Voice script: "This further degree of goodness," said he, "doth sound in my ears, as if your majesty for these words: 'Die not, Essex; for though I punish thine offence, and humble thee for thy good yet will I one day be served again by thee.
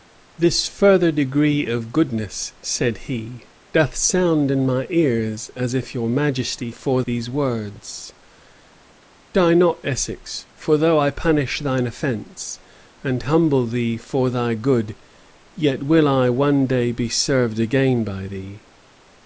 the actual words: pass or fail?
pass